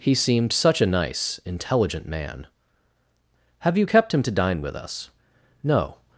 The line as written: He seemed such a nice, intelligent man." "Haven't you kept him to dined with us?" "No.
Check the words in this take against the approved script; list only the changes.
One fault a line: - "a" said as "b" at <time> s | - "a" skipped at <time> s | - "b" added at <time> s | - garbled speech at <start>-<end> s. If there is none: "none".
- "Haven't" said as "Have" at 3.6 s
- "dined" said as "dine" at 4.4 s